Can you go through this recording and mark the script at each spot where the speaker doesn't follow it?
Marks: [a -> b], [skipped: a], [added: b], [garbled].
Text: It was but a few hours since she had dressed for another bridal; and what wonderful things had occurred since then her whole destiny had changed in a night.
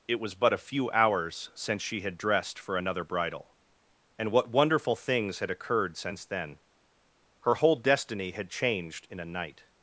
It was but a few hours since she had dressed for another bridal; and what wonderful things had occurred since then her whole destiny had changed in a night.